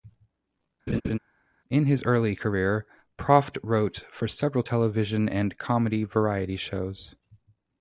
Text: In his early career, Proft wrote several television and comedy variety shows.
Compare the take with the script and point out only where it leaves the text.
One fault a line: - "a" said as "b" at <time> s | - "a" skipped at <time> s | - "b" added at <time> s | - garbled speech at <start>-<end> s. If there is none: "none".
- "for" added at 4.1 s